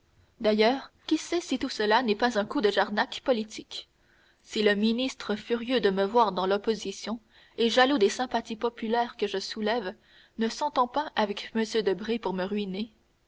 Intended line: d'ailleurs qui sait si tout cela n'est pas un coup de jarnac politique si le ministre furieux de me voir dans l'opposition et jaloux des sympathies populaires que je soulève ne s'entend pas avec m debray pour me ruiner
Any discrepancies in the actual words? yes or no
no